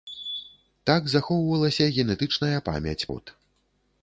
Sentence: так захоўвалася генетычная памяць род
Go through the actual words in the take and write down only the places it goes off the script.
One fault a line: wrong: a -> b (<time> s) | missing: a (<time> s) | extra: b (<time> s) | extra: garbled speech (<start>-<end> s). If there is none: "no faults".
no faults